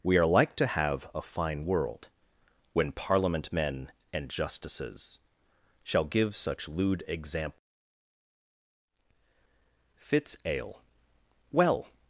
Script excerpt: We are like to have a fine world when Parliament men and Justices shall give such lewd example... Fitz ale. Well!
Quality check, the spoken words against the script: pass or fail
pass